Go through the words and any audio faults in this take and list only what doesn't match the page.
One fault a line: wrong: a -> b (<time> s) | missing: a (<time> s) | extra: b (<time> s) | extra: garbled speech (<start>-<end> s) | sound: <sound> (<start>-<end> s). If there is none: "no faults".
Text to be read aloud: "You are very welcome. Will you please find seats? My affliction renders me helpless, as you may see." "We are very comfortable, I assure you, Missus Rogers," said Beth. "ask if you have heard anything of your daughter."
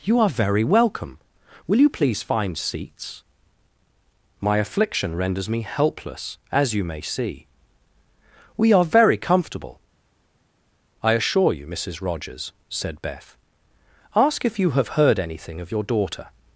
no faults